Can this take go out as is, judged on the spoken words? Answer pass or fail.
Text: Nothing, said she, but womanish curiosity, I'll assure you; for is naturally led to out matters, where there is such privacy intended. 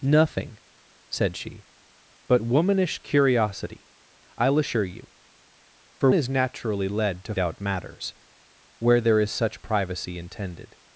pass